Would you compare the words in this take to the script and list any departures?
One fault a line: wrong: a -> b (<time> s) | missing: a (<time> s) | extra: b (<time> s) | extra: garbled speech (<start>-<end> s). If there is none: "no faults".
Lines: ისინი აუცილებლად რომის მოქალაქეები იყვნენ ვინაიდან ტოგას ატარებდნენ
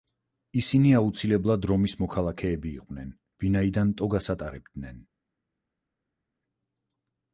no faults